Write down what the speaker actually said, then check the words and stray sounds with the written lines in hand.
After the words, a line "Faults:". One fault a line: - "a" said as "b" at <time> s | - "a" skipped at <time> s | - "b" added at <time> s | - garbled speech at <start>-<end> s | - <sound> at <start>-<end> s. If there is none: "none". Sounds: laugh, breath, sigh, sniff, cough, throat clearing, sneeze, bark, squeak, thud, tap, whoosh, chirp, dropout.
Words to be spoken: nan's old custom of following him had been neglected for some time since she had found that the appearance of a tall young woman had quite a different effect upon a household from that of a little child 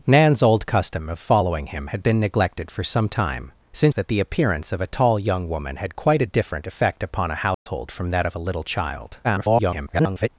nan's old custom of following him had been neglected for some time since that the appearance of a tall young woman had quite a different effect upon a household from that of a little child [garbled]
Faults:
- "she had found" skipped at 4.0 s
- dropout at 7.5-7.7 s
- garbled speech at 9.2-10.3 s